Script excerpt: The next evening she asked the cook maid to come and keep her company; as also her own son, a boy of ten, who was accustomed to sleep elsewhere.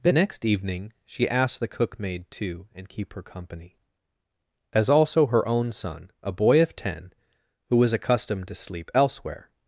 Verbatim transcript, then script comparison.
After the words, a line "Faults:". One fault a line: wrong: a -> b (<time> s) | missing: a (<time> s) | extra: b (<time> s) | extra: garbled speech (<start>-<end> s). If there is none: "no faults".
The next evening she asked the cook maid to and keep her company; as also her own son, a boy of ten, who was accustomed to sleep elsewhere.
Faults:
missing: come (2.7 s)